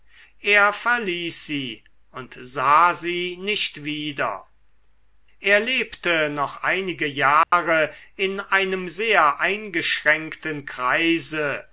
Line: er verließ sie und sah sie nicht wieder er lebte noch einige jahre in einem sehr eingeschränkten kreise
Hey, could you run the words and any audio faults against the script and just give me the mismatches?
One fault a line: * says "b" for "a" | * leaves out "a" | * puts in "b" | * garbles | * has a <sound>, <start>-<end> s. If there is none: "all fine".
* has a dropout, 7.4-7.5 s